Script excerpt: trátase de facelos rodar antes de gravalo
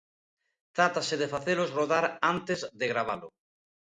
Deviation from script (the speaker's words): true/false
false